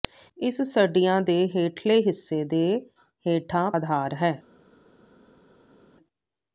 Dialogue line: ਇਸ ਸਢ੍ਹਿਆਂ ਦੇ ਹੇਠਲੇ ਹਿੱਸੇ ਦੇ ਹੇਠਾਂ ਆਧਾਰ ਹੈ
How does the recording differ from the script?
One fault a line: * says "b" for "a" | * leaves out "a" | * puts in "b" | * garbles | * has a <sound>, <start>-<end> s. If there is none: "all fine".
all fine